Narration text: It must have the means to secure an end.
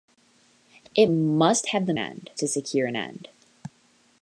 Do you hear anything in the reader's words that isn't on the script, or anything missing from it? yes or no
yes